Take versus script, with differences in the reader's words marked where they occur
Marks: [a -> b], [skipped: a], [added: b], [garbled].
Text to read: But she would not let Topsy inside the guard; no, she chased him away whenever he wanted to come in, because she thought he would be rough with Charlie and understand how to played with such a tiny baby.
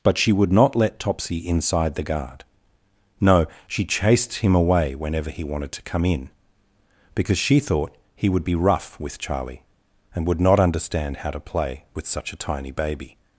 But she would not let Topsy inside the guard; no, she chased him away whenever he wanted to come in, because she thought he would be rough with Charlie and [added: would not] understand how to [played -> play] with such a tiny baby.